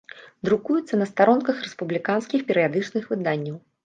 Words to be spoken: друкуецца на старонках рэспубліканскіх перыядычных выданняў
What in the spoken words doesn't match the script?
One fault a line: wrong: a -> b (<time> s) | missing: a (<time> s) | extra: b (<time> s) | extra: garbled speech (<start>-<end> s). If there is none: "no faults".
no faults